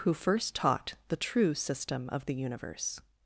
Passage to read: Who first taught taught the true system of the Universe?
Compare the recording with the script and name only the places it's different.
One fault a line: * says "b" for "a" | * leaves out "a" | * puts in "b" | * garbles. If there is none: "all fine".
* leaves out "taught"